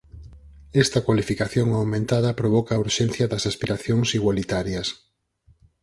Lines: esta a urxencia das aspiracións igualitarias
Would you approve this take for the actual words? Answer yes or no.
no